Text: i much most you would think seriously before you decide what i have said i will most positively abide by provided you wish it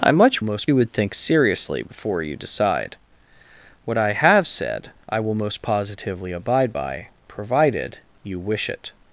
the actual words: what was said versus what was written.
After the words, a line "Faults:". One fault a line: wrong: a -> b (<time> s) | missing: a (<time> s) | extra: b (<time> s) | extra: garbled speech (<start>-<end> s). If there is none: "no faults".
i much most you would think seriously before you decide what i have said i will most positively abide by provided you wish it
Faults:
no faults